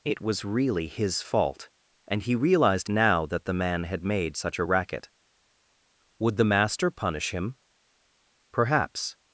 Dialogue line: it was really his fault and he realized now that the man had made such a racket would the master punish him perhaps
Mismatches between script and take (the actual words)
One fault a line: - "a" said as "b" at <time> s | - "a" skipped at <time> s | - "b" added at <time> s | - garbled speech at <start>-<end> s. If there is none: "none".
none